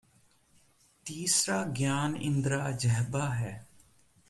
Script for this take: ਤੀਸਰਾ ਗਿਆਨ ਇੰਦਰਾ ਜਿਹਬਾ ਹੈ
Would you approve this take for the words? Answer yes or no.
yes